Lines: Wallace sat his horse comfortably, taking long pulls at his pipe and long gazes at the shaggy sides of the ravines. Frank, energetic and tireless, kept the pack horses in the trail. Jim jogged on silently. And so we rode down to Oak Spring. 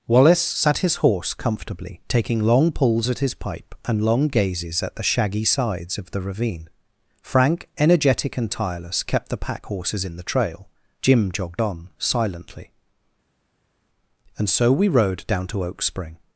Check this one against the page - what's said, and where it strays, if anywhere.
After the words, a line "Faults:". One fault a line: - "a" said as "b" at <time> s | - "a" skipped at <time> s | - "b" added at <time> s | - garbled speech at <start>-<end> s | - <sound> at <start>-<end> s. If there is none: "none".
Wallace sat his horse comfortably, taking long pulls at his pipe and long gazes at the shaggy sides of the ravine. Frank, energetic and tireless, kept the pack horses in the trail. Jim jogged on silently. And so we rode down to Oak Spring.
Faults:
- "ravines" said as "ravine" at 6.2 s